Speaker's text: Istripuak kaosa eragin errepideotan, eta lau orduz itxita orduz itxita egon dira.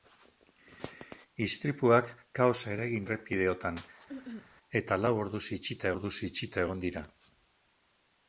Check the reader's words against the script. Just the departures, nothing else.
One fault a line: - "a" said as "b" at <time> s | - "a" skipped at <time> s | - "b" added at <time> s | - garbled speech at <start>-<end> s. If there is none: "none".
none